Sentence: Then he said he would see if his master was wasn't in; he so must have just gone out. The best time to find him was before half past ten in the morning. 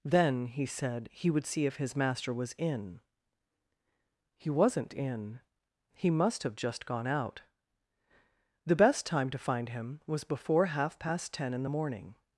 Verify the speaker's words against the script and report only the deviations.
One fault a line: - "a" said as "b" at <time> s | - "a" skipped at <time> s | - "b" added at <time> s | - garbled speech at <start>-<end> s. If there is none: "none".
- "in He" added at 2.6 s
- "so" skipped at 6.1 s